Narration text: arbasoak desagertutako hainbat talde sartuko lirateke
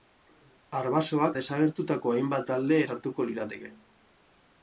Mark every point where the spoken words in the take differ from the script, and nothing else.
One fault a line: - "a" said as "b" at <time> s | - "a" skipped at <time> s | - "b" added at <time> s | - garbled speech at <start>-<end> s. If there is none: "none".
none